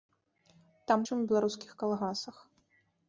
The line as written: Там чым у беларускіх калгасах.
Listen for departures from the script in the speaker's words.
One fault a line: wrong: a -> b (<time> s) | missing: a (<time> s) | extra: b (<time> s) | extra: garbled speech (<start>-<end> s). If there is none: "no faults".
no faults